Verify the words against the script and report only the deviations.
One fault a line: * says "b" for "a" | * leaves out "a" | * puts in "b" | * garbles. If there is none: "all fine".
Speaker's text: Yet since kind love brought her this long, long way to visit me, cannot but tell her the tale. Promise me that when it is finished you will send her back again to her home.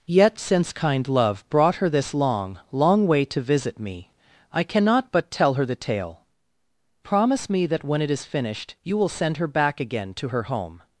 * puts in "I"